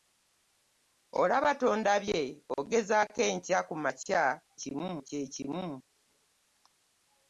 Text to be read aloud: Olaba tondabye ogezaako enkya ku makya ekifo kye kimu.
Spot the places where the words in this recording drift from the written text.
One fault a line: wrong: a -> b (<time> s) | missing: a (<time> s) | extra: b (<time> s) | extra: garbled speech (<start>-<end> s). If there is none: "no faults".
wrong: ekifo -> kimu (4.6 s)